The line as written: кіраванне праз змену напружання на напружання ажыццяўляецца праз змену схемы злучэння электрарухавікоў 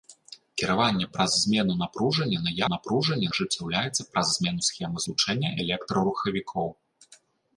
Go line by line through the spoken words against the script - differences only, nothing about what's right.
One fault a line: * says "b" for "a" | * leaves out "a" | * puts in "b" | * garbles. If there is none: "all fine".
all fine